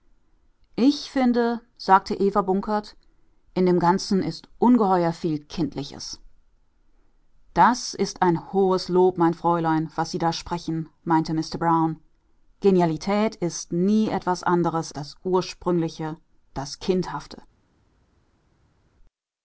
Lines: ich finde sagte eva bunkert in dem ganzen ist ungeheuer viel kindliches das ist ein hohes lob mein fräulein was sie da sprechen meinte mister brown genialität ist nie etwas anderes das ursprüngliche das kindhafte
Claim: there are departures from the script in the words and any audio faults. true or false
false